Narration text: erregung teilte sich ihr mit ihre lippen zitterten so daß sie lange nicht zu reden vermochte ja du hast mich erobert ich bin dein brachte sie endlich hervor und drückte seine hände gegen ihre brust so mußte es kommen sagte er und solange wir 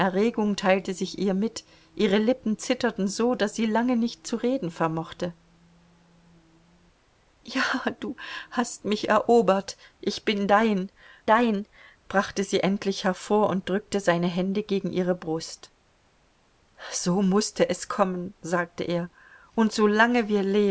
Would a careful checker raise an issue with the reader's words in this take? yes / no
yes